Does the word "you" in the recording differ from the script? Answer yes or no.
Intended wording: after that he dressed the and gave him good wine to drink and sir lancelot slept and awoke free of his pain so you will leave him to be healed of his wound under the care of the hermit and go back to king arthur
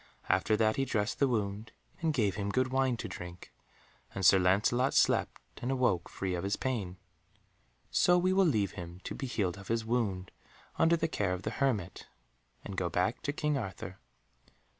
yes